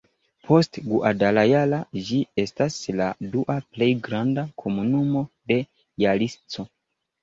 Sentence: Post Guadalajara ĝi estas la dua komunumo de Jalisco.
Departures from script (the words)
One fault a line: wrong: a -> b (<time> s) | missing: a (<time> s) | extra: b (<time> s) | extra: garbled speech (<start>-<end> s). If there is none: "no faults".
extra: plej granda (3.7 s)